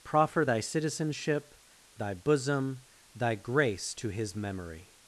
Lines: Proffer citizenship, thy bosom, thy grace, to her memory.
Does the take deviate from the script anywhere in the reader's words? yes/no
yes